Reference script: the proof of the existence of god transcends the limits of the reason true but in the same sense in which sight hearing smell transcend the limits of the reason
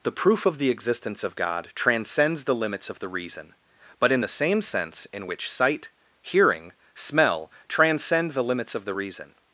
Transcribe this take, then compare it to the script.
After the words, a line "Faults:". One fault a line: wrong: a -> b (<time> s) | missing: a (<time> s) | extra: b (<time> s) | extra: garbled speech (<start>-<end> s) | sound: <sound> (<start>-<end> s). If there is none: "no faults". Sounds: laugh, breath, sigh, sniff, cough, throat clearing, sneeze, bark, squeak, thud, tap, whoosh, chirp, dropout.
the proof of the existence of god transcends the limits of the reason but in the same sense in which sight hearing smell transcend the limits of the reason
Faults:
missing: true (3.5 s)